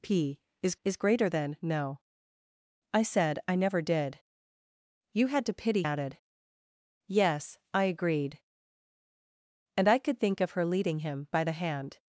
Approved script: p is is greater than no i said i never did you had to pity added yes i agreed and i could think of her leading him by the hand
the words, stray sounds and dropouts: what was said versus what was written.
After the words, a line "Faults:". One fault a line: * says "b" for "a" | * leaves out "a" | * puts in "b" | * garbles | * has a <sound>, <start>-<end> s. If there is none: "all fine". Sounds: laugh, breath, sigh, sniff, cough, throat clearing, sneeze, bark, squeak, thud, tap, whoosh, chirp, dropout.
p is is greater than no i said i never did you had to pity added yes i agreed and i could think of her leading him by the hand
Faults:
all fine